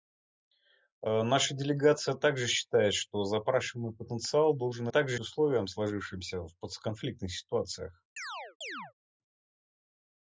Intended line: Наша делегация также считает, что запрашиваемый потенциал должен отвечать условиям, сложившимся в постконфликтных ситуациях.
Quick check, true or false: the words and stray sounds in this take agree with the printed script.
false